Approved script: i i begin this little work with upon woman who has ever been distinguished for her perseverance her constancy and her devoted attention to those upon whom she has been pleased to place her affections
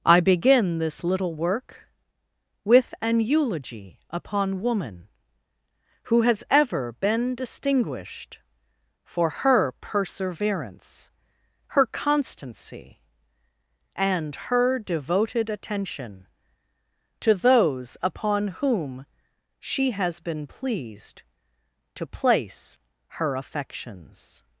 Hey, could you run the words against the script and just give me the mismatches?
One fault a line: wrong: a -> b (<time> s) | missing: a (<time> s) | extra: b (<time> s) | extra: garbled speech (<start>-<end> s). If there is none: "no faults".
missing: i (0.2 s)
extra: an eulogy (3.0 s)